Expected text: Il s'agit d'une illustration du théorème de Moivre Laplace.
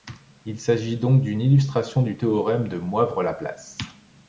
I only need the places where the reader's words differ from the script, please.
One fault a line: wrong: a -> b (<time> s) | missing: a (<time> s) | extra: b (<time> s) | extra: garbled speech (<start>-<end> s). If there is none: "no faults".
extra: donc (1.0 s)